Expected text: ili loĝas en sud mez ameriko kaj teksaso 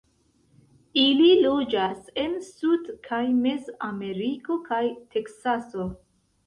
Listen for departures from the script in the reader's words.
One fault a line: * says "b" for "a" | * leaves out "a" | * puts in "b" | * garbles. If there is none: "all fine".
* puts in "kaj"